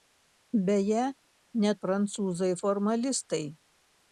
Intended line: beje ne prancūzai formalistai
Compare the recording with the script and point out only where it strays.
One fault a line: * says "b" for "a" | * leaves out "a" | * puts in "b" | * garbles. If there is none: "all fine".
all fine